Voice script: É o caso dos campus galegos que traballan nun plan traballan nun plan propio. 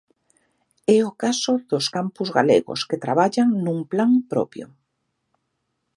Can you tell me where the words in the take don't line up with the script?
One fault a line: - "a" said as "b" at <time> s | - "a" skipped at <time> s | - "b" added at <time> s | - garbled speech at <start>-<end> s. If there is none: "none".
- "traballan nun plan" skipped at 4.1 s